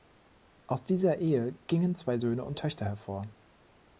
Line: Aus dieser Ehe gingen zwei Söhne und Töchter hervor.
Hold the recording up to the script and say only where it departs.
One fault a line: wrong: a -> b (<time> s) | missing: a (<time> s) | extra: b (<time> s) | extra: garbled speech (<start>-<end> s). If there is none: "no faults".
no faults